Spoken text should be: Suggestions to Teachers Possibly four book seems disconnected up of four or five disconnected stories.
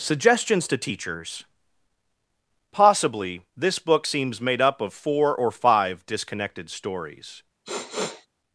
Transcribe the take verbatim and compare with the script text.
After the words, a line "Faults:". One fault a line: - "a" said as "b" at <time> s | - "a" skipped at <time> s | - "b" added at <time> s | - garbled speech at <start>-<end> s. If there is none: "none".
Suggestions to Teachers Possibly this book seems made up of four or five disconnected stories.
Faults:
- "four" said as "this" at 3.5 s
- "disconnected" said as "made" at 4.4 s